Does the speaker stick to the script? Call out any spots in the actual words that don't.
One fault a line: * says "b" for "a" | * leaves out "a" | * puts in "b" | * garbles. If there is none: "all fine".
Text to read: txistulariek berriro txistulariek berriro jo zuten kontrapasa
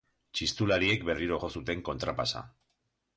* leaves out "txistulariek berriro"